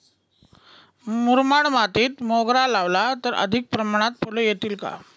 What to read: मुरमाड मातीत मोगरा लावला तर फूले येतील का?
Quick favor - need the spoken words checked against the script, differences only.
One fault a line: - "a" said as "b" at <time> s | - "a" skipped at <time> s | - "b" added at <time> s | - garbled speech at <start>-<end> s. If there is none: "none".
- "अधिक प्रमाणात" added at 3.4 s